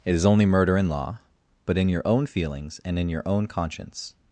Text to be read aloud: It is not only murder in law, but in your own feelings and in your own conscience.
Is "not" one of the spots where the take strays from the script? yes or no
yes